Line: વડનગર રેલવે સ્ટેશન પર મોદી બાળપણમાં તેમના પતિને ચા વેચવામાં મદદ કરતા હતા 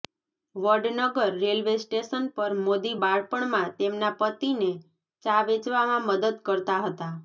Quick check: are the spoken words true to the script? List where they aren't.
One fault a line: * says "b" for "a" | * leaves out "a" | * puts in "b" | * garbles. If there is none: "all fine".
all fine